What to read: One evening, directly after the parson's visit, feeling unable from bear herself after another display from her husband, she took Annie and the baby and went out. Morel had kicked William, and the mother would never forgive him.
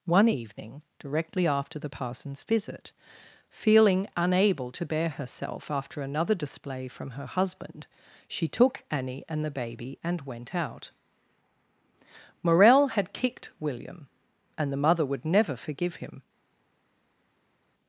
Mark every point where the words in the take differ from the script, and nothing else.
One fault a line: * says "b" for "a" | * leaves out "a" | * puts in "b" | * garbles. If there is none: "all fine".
* says "to" for "from"